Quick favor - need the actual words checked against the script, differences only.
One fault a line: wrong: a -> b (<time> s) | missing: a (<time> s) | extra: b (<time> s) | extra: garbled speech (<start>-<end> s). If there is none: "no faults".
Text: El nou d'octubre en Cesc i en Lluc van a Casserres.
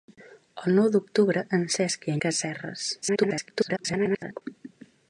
missing: en Lluc van (2.2 s)
extra: garbled speech (3.0-4.4 s)